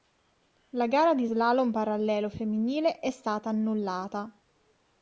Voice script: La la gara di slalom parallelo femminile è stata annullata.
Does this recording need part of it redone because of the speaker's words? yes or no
yes